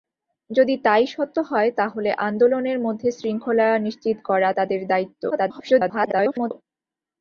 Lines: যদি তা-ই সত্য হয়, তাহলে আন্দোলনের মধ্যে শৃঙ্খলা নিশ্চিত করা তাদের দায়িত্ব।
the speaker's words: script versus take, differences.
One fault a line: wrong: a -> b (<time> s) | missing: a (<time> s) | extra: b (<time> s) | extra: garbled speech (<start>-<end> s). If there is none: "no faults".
extra: garbled speech (5.3-6.5 s)